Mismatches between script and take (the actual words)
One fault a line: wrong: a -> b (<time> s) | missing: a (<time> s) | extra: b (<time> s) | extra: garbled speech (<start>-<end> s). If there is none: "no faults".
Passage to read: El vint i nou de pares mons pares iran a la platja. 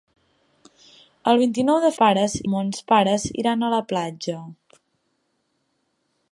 no faults